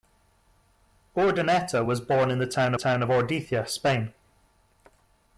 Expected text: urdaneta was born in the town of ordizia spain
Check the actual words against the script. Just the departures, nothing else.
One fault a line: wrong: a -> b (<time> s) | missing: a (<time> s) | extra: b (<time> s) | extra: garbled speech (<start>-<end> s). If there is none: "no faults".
extra: town (2.7 s)